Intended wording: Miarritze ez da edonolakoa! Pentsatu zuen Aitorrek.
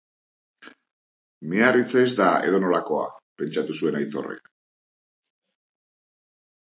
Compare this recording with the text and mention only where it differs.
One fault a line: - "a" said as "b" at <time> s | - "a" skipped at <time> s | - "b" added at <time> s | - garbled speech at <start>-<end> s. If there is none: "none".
none